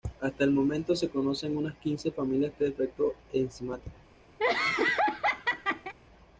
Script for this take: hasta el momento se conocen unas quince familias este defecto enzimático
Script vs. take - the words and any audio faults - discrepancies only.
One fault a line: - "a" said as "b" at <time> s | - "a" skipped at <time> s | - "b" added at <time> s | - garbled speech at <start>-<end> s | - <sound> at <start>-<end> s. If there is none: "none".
- laugh at 4.4-5.9 s